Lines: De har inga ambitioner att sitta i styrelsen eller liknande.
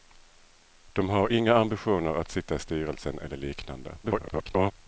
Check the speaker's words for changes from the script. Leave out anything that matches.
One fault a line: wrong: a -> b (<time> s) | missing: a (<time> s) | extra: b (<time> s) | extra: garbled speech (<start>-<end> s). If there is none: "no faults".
extra: garbled speech (4.0-4.7 s)